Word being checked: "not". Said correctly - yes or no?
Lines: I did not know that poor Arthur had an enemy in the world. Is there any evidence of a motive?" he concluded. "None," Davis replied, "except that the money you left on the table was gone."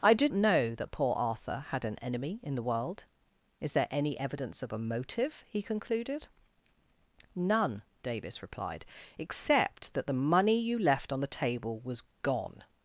no